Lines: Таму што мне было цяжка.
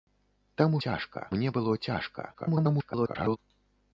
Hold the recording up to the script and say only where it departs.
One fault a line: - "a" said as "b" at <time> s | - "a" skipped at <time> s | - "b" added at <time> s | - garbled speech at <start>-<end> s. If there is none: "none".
- "што" said as "цяжка" at 0.9 s
- garbled speech at 2.3-3.4 s